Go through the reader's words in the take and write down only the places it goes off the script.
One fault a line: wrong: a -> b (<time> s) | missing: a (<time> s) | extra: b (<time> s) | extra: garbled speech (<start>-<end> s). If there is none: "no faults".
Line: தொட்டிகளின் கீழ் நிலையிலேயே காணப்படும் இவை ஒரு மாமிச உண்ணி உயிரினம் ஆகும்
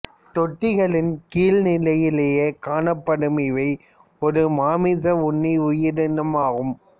no faults